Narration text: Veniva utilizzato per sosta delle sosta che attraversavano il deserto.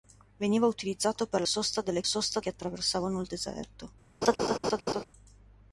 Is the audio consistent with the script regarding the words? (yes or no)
yes